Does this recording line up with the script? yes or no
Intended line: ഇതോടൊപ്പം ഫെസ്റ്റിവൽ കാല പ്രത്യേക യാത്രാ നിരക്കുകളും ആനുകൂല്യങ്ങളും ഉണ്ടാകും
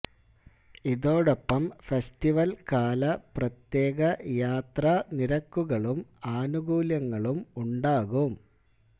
yes